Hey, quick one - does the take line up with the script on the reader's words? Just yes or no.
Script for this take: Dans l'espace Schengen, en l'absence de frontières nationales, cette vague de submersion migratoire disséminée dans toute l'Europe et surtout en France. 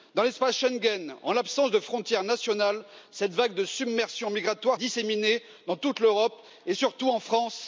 yes